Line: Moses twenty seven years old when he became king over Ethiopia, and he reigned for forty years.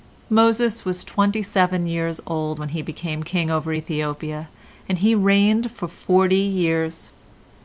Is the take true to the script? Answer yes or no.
no